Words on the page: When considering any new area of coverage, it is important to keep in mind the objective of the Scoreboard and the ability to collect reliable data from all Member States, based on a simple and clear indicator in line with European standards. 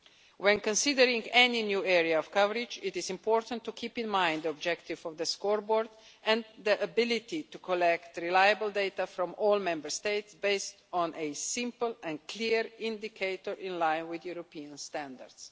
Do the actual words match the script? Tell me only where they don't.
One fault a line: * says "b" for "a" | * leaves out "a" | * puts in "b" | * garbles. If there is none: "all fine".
all fine